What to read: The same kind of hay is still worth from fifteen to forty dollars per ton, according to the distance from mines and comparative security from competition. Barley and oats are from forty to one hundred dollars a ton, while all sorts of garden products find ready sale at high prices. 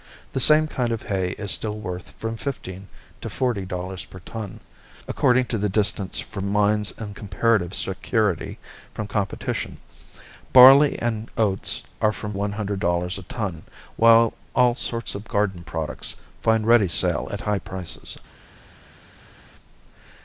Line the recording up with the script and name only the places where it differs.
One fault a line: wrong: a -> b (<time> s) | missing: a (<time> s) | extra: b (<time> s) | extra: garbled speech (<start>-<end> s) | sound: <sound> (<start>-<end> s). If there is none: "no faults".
missing: forty to (12.3 s)